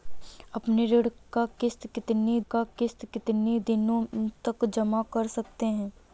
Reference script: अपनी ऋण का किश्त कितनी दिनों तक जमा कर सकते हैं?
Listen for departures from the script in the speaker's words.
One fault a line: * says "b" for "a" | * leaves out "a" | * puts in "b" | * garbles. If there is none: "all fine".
* puts in "का किश्त कितनी"